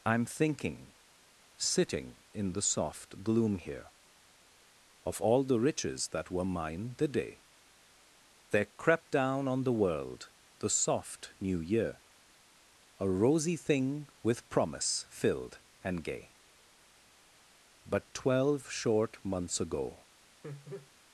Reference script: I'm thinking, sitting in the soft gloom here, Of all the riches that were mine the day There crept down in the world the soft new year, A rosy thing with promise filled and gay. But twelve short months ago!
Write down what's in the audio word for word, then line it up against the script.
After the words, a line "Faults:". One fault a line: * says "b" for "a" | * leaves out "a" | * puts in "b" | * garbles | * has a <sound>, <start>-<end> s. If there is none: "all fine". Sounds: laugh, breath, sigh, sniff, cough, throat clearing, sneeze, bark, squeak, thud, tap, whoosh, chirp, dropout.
I'm thinking, sitting in the soft gloom here, Of all the riches that were mine the day There crept down on the world the soft new year, A rosy thing with promise filled and gay. But twelve short months ago!
Faults:
* says "on" for "in"
* has a laugh, 20.4-20.9 s